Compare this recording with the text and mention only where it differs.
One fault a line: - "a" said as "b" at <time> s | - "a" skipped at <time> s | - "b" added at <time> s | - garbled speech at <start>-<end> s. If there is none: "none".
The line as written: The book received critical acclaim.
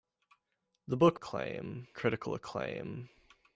- "received" said as "acclaim" at 1.1 s